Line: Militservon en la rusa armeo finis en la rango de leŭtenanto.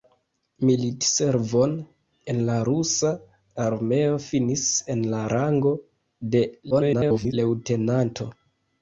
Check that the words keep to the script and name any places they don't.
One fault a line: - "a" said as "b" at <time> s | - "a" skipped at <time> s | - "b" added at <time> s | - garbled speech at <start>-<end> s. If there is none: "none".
- garbled speech at 6.7-7.3 s